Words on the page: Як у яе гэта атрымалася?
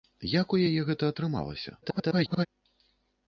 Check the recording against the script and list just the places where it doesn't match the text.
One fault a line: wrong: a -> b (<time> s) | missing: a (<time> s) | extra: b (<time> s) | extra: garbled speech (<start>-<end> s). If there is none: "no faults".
extra: garbled speech (1.8-2.5 s)